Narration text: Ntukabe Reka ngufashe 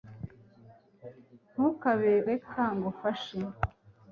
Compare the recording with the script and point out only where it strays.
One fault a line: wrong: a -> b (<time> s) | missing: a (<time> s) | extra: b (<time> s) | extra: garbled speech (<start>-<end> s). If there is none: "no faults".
no faults